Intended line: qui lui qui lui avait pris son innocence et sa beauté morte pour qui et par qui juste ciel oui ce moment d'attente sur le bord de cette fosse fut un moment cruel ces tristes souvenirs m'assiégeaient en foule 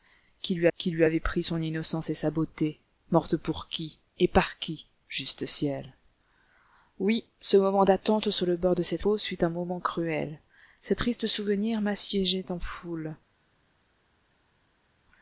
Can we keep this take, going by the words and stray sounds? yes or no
yes